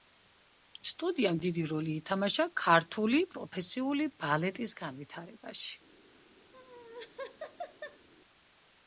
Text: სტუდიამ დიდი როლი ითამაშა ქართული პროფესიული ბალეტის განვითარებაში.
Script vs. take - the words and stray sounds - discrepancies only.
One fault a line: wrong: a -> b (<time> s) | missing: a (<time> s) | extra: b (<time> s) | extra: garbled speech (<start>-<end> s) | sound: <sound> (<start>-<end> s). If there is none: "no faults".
sound: laugh (6.5-8.1 s)